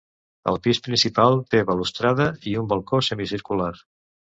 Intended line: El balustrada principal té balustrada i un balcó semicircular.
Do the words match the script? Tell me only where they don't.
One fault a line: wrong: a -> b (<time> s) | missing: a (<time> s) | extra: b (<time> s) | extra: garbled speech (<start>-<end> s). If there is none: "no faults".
wrong: balustrada -> pis (0.7 s)